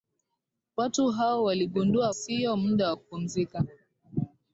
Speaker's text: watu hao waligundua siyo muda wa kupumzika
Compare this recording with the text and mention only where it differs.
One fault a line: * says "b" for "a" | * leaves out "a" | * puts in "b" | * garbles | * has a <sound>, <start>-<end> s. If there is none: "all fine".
all fine